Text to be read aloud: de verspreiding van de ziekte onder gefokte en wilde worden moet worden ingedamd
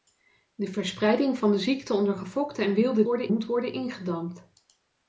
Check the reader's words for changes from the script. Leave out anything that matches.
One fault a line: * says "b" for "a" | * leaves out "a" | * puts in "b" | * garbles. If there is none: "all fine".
all fine